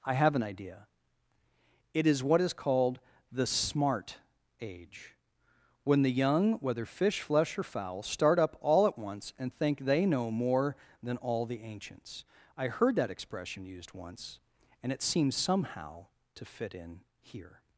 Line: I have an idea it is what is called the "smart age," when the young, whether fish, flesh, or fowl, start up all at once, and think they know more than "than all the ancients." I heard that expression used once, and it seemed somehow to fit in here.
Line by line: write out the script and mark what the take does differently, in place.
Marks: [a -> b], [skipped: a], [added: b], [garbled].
I have an idea it is what is called the "smart age," when the young, whether fish, flesh, or fowl, start up all at once, and think they know more than [skipped: "than] all the ancients." I heard that expression used once, and it [seemed -> seems] somehow to fit in here.